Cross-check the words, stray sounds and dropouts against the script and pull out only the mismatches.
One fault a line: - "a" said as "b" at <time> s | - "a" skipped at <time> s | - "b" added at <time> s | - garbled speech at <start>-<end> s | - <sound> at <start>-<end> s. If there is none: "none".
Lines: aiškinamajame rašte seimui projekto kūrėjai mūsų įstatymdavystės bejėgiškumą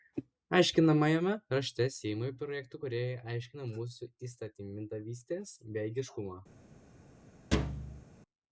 - "aiškina" added at 3.3 s
- thud at 7.5-8.1 s